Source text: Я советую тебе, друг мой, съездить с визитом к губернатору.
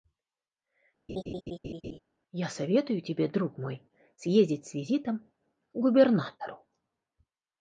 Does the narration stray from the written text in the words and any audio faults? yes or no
yes